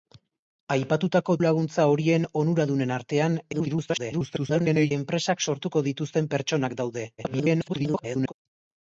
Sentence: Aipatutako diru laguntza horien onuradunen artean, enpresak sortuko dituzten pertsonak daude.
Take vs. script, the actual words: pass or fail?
fail